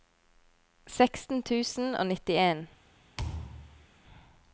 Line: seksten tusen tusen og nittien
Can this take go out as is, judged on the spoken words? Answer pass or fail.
fail